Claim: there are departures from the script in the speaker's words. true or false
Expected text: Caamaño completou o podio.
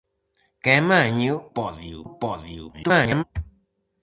true